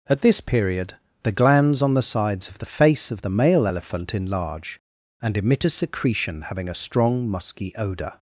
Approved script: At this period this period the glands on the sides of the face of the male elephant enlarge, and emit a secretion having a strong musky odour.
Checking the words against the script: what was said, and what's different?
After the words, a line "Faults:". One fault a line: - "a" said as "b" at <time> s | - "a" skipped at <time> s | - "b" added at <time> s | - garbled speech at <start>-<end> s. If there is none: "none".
At this period the glands on the sides of the face of the male elephant enlarge, and emit a secretion having a strong musky odour.
Faults:
- "this period" skipped at 0.9 s